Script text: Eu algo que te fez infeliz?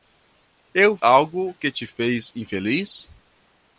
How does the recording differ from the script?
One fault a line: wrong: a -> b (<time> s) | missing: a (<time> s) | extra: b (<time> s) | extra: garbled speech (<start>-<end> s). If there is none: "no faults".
no faults